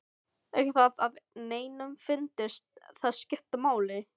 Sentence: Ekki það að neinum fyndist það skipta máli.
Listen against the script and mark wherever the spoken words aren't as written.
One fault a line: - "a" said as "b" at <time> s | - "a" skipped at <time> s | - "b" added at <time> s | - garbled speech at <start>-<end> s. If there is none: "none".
none